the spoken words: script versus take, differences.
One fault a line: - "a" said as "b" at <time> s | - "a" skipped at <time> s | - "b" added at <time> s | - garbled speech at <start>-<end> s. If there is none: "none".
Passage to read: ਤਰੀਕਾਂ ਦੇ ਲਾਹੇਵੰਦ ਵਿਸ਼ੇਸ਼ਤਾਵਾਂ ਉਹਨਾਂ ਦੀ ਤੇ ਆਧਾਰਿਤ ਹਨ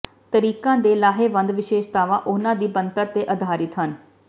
- "ਬਣਤਰ" added at 2.7 s